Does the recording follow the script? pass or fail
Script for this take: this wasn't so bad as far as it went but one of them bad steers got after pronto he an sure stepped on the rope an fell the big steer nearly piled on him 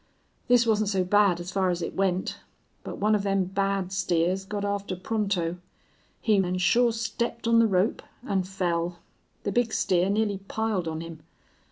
pass